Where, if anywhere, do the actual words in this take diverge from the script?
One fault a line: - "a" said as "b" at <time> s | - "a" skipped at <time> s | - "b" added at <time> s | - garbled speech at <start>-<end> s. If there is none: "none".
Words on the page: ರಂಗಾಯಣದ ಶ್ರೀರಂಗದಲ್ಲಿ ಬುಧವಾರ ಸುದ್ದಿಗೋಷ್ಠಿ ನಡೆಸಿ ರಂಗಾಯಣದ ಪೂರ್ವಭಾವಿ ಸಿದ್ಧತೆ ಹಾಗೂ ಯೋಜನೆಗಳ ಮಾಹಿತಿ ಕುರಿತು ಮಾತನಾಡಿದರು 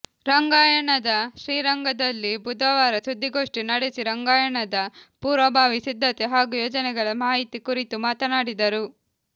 none